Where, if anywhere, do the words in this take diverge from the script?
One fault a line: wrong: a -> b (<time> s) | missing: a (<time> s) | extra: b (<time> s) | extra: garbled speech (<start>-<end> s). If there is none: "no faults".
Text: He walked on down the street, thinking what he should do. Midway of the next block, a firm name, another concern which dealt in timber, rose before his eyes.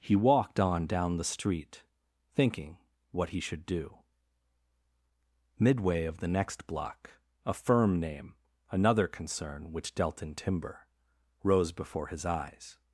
no faults